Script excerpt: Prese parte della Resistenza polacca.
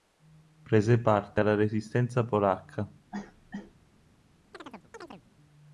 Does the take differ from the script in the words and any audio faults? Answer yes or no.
yes